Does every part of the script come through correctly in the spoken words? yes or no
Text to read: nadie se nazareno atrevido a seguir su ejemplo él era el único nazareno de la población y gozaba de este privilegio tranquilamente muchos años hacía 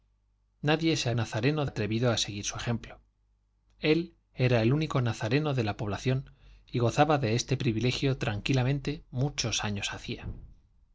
yes